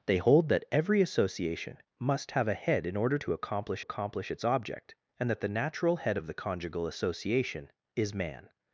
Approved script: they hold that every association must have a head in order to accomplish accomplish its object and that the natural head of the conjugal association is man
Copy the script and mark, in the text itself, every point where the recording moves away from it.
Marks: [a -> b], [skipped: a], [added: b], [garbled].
they hold that every association must have a head in order to accomplish accomplish its object and that the natural head of the conjugal association is man